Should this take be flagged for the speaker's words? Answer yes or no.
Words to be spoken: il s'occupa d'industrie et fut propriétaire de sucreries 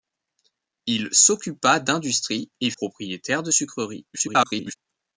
yes